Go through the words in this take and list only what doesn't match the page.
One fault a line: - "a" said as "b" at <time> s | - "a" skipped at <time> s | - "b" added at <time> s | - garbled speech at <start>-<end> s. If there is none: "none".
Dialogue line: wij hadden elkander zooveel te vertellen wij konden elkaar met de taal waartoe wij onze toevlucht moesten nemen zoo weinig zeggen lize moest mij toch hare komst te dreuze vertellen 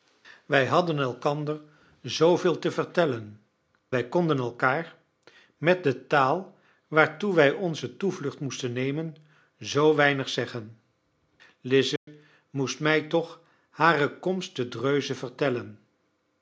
none